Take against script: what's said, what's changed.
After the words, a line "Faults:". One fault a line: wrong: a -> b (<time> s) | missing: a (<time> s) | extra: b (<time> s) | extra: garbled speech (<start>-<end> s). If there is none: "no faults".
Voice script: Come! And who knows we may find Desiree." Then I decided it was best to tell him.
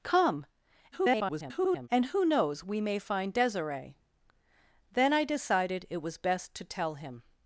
Come! [garbled] And who knows we may find Desiree." Then I decided it was best to tell him.
Faults:
extra: garbled speech (0.9-1.9 s)